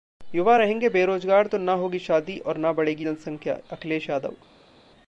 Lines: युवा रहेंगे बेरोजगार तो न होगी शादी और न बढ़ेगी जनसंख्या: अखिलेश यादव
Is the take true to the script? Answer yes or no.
yes